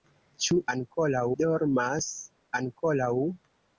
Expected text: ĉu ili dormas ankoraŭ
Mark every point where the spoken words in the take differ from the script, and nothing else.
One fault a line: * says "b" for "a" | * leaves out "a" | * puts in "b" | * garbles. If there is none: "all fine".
* says "ankoraŭ" for "ili"